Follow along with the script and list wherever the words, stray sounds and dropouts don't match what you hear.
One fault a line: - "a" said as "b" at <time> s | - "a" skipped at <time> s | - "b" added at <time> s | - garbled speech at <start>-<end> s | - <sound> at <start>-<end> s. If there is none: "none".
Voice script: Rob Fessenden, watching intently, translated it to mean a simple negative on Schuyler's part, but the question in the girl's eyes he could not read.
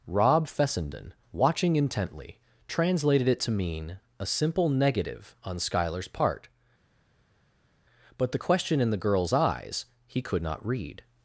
none